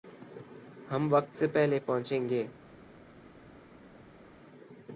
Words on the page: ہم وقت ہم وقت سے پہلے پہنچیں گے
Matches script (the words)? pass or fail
fail